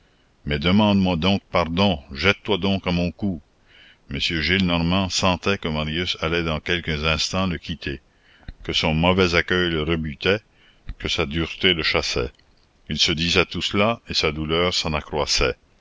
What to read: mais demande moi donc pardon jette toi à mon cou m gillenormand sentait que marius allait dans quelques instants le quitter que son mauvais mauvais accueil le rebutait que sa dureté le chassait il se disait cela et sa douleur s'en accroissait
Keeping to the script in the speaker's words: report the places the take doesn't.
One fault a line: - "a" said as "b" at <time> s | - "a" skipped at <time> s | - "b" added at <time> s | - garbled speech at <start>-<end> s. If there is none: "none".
- "donc" added at 2.6 s
- "mauvais" skipped at 9.3 s
- "tout" added at 13.4 s